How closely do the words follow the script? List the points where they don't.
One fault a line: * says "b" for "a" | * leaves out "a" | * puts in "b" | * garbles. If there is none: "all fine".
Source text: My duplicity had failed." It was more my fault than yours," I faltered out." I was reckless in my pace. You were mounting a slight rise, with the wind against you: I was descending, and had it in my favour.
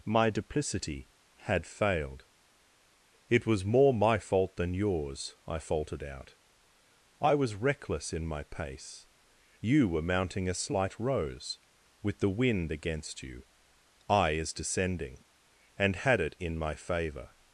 * says "rose" for "rise"
* says "is" for "was"